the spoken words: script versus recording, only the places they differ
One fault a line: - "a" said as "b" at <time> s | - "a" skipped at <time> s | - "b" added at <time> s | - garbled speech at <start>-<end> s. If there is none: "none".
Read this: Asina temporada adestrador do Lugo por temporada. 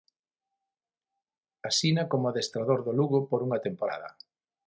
- "temporada" said as "como" at 2.1 s
- "unha" added at 3.5 s